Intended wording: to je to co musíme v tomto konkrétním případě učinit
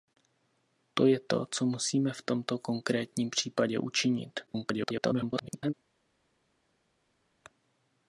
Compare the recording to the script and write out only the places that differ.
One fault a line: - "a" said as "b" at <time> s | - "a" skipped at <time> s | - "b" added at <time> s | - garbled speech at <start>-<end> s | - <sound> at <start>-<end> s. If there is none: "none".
- garbled speech at 4.5-5.7 s